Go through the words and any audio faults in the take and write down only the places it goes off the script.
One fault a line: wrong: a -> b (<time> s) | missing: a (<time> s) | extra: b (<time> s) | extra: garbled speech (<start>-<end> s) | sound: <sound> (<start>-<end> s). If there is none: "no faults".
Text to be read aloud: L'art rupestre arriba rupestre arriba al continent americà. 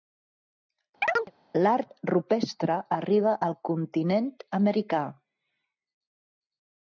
sound: chirp (1.0-1.3 s)
missing: rupestre arriba (3.3 s)